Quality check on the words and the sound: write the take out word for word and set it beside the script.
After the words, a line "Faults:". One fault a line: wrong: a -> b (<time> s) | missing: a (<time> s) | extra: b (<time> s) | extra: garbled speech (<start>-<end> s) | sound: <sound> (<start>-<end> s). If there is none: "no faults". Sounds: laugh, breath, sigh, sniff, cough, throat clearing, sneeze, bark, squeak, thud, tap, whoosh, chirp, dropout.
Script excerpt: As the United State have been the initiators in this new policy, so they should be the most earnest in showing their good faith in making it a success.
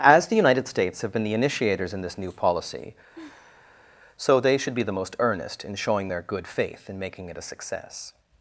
As the United States have been the initiators in this new policy, so they should be the most earnest in showing their good faith in making it a success.
Faults:
wrong: State -> States (0.7 s)
sound: sigh (3.1-4.0 s)